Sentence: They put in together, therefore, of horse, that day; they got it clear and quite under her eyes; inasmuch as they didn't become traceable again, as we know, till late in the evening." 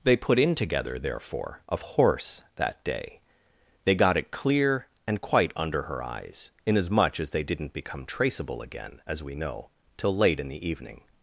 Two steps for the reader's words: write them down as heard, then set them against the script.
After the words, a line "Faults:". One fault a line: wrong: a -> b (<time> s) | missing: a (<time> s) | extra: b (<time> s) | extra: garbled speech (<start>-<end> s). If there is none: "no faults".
They put in together, therefore, of horse, that day; they got it clear and quite under her eyes; inasmuch as they didn't become traceable again, as we know, till late in the evening."
Faults:
no faults